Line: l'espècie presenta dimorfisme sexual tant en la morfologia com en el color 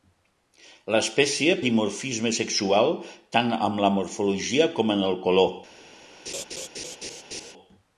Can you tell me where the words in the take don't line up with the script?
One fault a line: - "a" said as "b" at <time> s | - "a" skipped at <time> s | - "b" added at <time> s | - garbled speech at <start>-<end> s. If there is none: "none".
- "presenta" skipped at 1.6 s